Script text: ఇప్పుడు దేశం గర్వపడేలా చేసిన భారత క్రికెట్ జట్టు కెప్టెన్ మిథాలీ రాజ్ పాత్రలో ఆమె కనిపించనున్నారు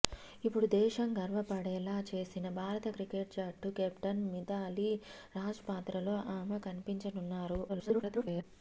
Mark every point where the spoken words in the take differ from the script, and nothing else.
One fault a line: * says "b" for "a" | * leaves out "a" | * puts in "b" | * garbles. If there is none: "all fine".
* garbles